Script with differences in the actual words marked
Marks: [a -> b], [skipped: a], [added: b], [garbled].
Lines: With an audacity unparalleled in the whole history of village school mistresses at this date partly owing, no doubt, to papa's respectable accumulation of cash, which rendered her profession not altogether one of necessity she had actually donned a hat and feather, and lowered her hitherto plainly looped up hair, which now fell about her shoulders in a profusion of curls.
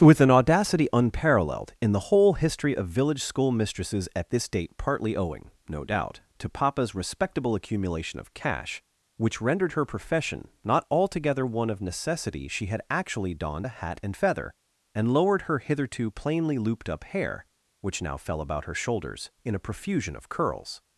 With an audacity unparalleled in the whole history of village school mistresses at this date partly owing, no doubt, to papa's respectable accumulation of cash, which rendered her profession not altogether one of necessity she had actually donned a hat and feather, and lowered her hitherto plainly looped up hair, which now fell about her shoulders in a profusion of curls.